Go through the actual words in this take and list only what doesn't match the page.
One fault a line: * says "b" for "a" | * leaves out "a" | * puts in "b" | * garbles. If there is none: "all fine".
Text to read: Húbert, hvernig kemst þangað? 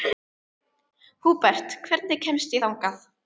all fine